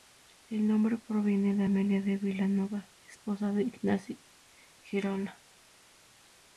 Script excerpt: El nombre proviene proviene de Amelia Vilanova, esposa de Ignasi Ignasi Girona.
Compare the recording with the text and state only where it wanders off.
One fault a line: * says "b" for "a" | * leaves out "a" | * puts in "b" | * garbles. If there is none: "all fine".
* leaves out "proviene"
* puts in "de"
* leaves out "Ignasi"